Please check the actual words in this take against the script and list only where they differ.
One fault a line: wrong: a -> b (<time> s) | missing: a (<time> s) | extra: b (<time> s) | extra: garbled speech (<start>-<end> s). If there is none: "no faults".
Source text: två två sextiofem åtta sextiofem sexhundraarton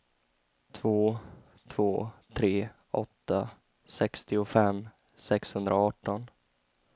wrong: sextiofem -> tre (2.3 s)